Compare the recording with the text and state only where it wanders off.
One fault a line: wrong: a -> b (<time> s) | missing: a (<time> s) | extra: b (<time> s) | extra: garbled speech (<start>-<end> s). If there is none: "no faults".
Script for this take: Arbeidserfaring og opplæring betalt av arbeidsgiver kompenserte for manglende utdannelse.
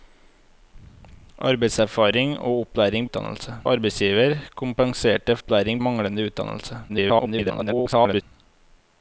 wrong: betalt -> utdannelse (3.1 s)
wrong: for -> opplæring (5.4 s)
extra: garbled speech (6.9-8.2 s)